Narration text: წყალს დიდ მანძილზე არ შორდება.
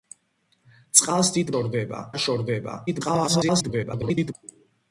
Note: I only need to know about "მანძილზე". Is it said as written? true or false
false